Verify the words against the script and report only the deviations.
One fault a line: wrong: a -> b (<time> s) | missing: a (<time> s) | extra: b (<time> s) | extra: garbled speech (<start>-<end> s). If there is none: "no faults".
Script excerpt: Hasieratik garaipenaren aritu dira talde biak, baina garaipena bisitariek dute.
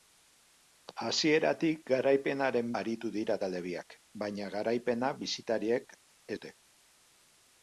no faults